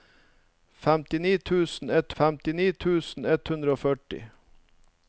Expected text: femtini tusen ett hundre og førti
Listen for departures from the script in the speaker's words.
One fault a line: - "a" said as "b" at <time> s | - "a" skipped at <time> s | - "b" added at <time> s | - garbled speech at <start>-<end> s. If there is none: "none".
- "femtini tusen ett" added at 2.2 s